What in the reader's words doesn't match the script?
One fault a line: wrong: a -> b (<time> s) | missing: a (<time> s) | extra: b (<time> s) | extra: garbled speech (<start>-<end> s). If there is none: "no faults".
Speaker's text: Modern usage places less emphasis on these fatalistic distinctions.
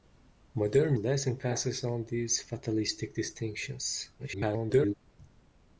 missing: usage places (1.0 s)
extra: garbled speech (4.2-4.9 s)